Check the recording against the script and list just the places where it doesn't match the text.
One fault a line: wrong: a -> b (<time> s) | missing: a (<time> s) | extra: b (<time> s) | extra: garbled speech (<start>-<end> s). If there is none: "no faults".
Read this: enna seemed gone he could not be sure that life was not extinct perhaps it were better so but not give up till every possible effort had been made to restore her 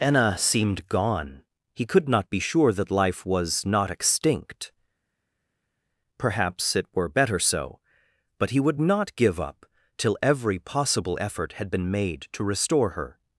extra: he would (8.5 s)